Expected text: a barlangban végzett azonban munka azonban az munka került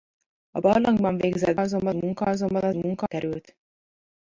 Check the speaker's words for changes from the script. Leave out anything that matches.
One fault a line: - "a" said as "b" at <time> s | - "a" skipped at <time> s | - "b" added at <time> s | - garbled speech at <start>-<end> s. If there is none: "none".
none